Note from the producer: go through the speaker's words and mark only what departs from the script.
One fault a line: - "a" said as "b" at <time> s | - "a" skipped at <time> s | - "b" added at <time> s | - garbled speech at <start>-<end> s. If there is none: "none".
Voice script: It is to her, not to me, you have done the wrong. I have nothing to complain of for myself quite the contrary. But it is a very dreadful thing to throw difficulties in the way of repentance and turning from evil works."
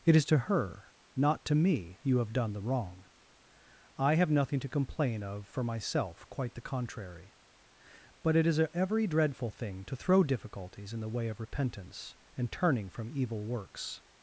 - "very" said as "every" at 8.7 s